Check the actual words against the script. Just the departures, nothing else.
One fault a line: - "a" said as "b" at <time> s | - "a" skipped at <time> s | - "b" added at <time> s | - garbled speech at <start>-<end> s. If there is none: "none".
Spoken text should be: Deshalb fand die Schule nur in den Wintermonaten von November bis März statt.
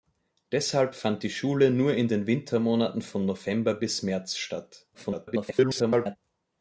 - garbled speech at 4.9-6.2 s